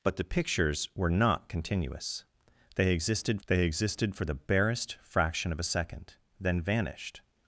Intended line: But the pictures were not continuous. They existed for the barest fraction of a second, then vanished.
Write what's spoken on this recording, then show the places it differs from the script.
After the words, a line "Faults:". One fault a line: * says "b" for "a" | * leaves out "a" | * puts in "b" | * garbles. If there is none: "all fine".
But the pictures were not continuous. They existed they existed for the barest fraction of a second, then vanished.
Faults:
* puts in "they existed"